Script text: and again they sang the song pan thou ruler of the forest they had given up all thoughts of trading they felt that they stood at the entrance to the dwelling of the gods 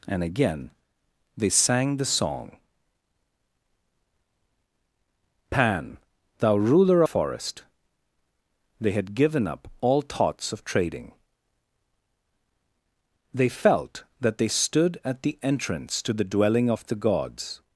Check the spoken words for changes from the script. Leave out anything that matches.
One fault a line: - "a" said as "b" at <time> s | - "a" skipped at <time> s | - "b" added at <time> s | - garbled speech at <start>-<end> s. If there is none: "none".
- "of the" skipped at 7.0 s